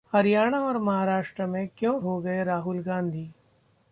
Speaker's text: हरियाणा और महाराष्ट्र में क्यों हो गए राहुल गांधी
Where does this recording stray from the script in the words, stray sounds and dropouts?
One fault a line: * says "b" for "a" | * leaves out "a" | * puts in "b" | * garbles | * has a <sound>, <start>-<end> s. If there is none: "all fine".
all fine